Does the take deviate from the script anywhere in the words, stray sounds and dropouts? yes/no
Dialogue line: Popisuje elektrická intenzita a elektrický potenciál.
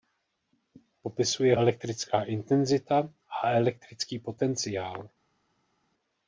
no